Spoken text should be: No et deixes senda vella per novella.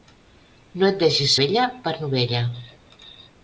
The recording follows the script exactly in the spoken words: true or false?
false